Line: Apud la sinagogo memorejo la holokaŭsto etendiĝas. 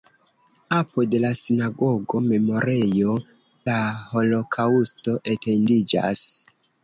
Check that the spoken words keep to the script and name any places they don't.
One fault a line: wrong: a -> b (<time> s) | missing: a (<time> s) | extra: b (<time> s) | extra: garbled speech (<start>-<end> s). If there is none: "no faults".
no faults